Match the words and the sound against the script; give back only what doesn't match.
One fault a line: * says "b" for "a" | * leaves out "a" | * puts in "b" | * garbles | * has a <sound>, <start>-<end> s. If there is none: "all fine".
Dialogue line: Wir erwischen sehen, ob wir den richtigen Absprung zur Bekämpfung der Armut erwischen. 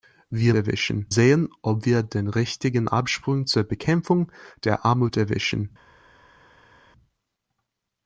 all fine